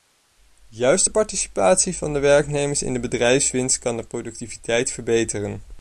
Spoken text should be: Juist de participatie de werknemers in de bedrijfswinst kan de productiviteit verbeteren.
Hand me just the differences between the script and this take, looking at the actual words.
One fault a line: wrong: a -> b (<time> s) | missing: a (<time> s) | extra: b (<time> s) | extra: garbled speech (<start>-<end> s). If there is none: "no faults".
extra: van (2.0 s)